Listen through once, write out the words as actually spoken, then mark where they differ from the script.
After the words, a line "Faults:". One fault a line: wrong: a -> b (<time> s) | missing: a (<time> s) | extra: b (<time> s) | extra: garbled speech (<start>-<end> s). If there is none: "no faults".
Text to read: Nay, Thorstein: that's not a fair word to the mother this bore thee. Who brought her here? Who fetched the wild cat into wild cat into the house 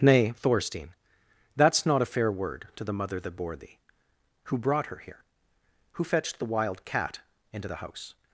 Nay, Thorstein: that's not a fair word to the mother that bore thee. Who brought her here? Who fetched the wild cat into the house
Faults:
wrong: this -> that (3.2 s)
missing: wild cat into (7.7 s)